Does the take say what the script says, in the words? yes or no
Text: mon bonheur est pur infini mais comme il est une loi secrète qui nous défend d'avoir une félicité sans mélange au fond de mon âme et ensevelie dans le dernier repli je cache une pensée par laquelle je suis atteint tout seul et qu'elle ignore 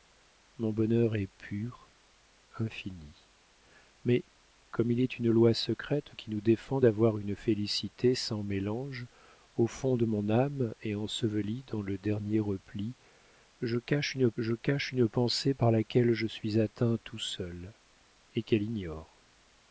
no